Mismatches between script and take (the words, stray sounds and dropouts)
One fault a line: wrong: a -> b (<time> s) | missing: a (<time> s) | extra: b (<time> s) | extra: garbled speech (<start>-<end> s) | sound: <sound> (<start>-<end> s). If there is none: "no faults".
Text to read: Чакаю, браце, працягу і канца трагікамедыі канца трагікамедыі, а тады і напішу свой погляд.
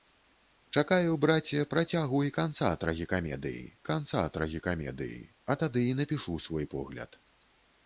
no faults